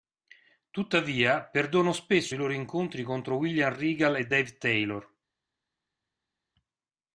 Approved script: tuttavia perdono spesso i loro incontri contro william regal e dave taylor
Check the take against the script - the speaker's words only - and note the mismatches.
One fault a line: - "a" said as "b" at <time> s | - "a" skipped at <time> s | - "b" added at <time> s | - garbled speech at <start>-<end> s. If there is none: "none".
none